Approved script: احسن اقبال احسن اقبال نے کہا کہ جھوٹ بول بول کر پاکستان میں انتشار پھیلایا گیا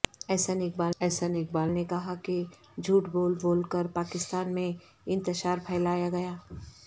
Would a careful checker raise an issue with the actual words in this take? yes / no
no